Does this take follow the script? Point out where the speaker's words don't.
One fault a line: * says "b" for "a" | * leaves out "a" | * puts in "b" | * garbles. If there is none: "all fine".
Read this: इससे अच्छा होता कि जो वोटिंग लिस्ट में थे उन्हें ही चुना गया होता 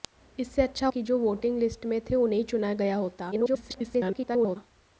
* leaves out "होता"
* garbles